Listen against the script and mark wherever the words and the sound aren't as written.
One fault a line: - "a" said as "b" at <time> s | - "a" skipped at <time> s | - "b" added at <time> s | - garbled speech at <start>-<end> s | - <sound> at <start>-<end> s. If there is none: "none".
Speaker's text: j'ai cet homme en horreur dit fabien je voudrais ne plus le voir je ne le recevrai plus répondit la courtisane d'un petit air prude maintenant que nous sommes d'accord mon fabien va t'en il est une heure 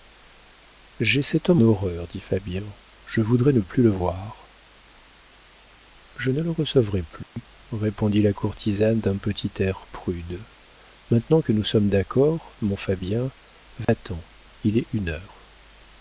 - "en" skipped at 1.6 s
- dropout at 7.2-7.4 s
- dropout at 13.8-13.9 s